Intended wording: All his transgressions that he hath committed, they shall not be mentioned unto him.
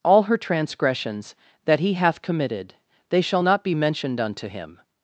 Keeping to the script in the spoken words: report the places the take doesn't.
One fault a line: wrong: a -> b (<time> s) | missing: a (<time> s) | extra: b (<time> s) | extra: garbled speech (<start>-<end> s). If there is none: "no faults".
wrong: his -> her (0.2 s)